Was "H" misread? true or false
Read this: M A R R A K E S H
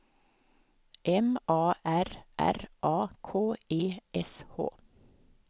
false